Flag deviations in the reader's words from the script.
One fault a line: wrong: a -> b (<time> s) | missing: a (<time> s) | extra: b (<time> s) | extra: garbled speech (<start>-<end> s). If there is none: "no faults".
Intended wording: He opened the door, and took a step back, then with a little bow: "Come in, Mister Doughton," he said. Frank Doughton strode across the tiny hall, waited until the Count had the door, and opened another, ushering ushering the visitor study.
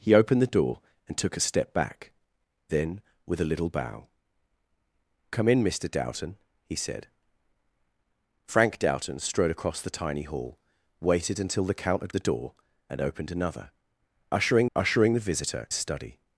no faults